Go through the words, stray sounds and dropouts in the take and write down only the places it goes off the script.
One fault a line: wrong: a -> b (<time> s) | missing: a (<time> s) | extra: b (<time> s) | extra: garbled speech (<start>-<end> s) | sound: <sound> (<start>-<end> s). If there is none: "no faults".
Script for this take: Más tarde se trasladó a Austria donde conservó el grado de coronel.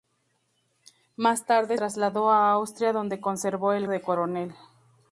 missing: se (1.8 s)
missing: grado (3.9 s)